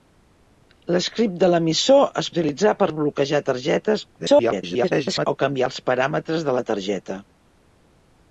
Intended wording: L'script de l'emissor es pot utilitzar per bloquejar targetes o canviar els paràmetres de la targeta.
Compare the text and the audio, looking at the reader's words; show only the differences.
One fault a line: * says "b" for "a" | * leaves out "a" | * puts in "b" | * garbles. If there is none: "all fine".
* leaves out "pot"
* garbles